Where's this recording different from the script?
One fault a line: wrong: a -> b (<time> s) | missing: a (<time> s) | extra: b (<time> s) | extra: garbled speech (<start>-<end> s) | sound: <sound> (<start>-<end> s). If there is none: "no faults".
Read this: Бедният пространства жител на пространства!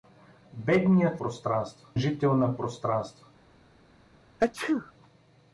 sound: sneeze (4.4-4.9 s)